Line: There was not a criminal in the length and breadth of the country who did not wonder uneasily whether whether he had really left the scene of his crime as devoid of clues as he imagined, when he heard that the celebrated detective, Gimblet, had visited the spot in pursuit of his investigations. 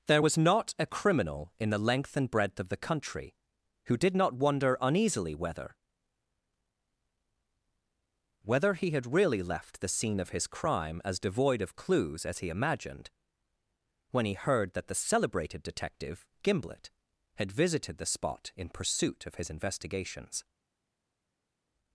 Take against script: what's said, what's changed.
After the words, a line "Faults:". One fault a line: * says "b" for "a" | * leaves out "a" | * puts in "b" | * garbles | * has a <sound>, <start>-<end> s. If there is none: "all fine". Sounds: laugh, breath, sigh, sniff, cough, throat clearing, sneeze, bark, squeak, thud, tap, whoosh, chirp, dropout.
There was not a criminal in the length and breadth of the country who did not wonder uneasily whether whether he had really left the scene of his crime as devoid of clues as he imagined, when he heard that the celebrated detective, Gimblet, had visited the spot in pursuit of his investigations.
Faults:
all fine